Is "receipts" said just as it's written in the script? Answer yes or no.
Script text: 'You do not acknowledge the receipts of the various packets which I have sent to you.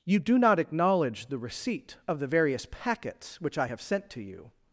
no